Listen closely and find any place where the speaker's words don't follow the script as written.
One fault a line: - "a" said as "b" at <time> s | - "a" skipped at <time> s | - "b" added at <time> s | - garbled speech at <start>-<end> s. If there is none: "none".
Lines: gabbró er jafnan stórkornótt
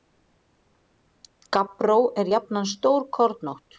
none